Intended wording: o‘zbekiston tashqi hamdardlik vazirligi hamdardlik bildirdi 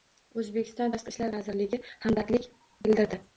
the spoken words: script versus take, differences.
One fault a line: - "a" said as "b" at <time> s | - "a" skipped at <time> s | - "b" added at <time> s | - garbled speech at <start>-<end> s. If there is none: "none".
- "hamdardlik" said as "ishlar" at 1.2 s